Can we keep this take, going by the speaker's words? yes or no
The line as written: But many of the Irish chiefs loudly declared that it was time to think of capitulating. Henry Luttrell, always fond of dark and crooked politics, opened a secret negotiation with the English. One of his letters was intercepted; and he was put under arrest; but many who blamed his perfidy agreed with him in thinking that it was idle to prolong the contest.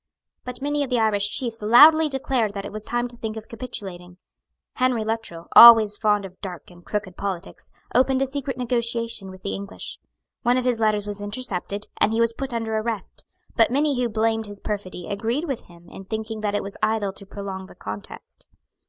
yes